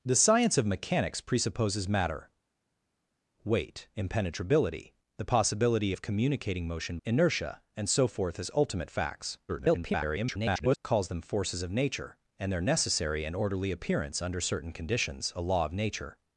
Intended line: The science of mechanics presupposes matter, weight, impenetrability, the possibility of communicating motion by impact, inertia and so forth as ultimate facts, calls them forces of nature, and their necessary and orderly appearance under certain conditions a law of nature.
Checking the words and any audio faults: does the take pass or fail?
fail